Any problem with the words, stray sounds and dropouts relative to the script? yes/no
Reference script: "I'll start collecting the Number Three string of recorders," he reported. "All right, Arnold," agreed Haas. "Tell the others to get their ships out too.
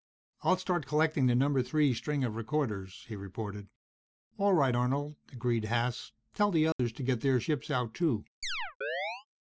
yes